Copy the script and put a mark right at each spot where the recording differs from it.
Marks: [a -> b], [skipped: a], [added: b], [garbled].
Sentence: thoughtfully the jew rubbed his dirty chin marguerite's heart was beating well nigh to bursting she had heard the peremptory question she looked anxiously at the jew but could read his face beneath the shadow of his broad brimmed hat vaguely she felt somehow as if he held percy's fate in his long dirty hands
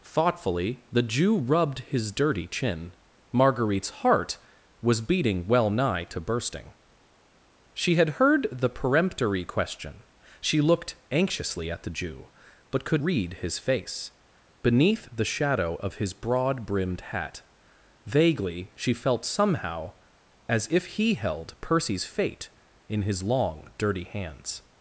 thoughtfully the jew rubbed his dirty chin marguerite's heart was beating well nigh to bursting she had heard the peremptory question she looked anxiously at the jew but could read his face beneath the shadow of his broad brimmed hat vaguely she felt somehow as if he held percy's fate in his long dirty hands